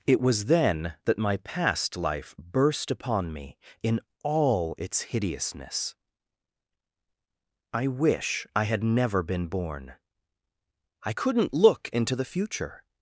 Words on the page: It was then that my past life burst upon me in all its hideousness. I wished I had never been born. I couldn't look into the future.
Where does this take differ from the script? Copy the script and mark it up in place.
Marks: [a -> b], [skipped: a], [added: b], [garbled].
It was then that my past life burst upon me in all its hideousness. I [wished -> wish] I had never been born. I couldn't look into the future.